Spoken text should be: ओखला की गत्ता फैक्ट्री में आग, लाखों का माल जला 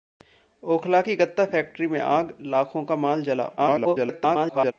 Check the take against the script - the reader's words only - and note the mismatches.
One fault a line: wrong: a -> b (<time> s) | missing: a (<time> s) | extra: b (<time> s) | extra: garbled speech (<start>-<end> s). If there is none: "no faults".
extra: garbled speech (3.6-4.7 s)